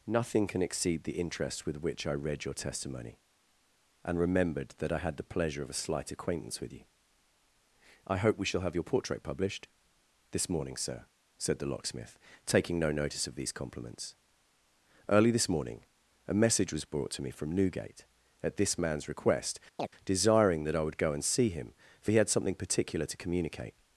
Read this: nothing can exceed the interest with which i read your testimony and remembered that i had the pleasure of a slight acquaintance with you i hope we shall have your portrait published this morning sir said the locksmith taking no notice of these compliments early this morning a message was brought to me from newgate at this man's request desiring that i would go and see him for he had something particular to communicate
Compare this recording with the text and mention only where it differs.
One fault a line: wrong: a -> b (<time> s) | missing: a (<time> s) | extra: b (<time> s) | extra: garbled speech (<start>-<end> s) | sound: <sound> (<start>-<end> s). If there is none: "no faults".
sound: chirp (19.8-19.9 s)